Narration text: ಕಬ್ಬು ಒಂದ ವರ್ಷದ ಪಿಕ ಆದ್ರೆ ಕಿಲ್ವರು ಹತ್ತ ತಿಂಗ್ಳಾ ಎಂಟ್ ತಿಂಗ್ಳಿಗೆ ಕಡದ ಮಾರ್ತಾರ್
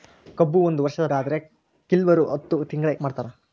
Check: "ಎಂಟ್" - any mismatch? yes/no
yes